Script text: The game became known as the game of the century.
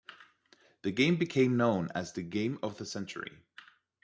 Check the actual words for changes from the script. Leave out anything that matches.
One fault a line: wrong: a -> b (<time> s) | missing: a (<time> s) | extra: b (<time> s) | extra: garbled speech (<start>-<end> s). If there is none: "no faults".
no faults